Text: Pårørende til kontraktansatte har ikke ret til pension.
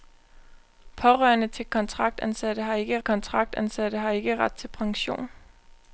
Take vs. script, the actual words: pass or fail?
fail